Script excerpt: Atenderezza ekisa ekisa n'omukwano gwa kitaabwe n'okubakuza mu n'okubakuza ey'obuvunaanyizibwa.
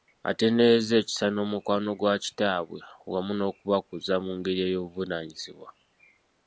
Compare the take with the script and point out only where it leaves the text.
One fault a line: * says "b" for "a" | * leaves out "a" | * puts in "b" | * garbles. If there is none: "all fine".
* leaves out "ekisa"
* puts in "wamu"
* says "ngeri" for "n'okubakuza"